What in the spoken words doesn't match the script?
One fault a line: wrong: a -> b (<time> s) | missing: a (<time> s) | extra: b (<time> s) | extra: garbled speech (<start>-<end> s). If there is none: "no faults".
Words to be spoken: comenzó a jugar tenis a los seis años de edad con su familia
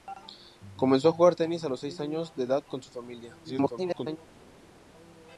extra: garbled speech (3.4-4.2 s)